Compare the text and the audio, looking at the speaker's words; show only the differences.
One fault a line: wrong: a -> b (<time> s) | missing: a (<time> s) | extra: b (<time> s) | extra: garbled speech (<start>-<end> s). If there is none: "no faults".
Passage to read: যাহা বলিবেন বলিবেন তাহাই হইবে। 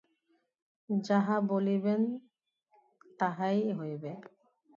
missing: বলিবেন (2.0 s)